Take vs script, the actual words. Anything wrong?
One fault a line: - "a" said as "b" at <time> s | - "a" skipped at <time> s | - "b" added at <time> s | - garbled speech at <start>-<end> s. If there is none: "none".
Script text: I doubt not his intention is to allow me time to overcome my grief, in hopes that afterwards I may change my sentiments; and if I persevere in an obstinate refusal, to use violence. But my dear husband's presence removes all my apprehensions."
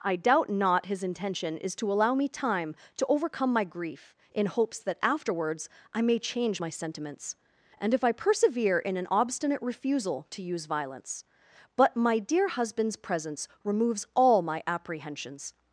none